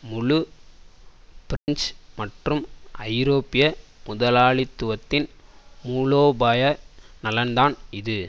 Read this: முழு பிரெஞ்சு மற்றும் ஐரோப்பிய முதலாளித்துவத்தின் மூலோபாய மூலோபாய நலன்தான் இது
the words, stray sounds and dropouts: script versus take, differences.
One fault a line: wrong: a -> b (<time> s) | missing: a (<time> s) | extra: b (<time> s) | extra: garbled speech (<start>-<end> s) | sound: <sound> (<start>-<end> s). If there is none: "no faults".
sound: dropout (1.6-1.7 s)
missing: மூலோபாய (6.6 s)